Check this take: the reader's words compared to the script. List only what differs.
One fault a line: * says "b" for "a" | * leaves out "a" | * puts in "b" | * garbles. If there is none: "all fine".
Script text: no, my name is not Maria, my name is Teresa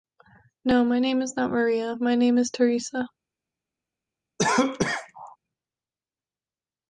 all fine